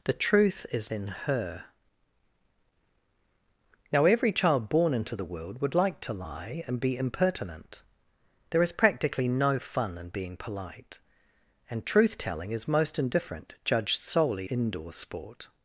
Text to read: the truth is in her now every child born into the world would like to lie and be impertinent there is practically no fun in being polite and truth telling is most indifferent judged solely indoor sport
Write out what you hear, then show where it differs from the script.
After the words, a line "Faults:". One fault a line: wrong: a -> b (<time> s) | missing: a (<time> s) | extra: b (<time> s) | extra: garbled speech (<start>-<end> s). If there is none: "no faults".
the truth is in her now every child born into the world would like to lie and be impertinent there is practically no fun in being polite and truth telling is most indifferent judged solely indoor sport
Faults:
no faults